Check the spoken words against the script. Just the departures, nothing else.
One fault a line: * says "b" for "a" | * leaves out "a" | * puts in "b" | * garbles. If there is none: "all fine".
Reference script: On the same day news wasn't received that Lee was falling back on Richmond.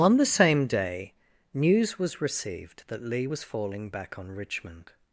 * says "was" for "wasn't"